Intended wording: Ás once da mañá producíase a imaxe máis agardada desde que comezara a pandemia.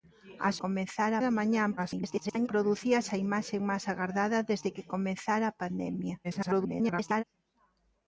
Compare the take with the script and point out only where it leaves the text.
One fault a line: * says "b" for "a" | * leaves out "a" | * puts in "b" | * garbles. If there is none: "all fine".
* says "comezara" for "once"
* garbles
* garbles